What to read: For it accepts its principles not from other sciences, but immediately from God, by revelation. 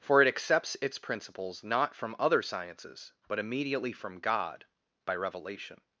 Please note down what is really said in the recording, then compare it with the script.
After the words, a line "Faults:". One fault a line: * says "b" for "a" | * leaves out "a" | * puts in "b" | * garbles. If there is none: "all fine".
For it accepts its principles not from other sciences, but immediately from God, by revelation.
Faults:
all fine